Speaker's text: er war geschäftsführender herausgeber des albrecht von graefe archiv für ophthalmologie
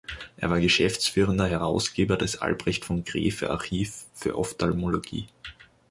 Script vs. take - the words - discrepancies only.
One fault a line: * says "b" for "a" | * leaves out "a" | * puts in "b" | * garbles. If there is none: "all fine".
all fine